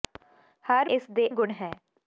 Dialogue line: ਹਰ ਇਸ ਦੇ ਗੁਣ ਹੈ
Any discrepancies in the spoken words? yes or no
no